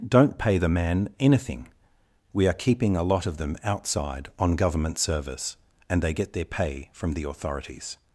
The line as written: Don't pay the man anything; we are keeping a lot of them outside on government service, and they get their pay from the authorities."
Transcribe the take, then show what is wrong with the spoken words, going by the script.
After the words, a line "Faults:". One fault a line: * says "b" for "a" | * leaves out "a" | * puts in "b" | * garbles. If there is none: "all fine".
Don't pay the man anything; we are keeping a lot of them outside on government service, and they get their pay from the authorities."
Faults:
all fine